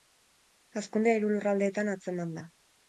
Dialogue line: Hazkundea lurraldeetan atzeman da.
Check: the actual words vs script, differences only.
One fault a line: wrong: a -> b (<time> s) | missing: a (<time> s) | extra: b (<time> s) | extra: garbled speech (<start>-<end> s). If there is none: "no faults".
extra: hiru (1.2 s)